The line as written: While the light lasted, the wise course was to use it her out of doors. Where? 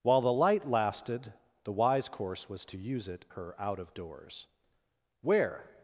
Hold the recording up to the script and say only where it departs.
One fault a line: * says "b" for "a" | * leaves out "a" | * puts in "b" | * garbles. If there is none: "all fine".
all fine